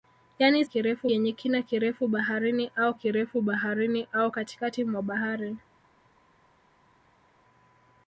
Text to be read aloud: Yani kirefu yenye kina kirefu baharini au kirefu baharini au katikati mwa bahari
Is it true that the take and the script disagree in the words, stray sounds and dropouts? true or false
false